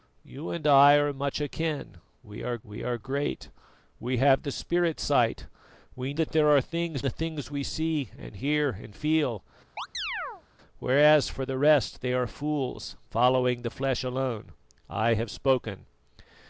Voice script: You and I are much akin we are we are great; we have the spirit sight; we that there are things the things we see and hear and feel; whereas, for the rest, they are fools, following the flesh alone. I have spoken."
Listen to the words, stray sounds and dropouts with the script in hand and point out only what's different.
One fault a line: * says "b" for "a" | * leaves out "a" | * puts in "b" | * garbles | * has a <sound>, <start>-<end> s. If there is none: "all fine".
* has a chirp, 9.8-10.4 s